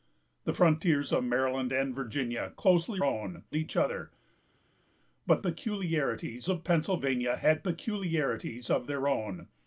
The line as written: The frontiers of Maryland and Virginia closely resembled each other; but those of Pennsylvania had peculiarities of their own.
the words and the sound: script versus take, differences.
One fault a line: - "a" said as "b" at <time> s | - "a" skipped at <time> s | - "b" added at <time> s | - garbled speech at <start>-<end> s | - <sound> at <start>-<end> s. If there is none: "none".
- "resembled" said as "own" at 3.0 s
- "those" said as "peculiarities" at 5.4 s